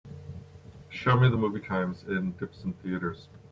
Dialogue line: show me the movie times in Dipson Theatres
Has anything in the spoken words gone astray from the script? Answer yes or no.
no